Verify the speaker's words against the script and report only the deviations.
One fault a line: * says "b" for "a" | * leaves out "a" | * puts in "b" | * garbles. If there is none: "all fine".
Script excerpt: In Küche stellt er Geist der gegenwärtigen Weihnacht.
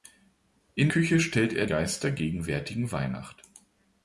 all fine